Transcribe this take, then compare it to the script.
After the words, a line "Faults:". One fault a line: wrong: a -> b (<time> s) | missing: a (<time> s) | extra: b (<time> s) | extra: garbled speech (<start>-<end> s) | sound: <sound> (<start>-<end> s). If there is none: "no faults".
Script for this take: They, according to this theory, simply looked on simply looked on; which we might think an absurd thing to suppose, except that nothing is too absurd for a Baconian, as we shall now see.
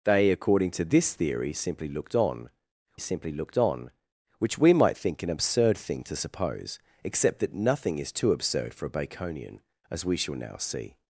They, according to this theory, simply looked on simply looked on; which we might think an absurd thing to suppose, except that nothing is too absurd for a Baconian, as we shall now see.
Faults:
no faults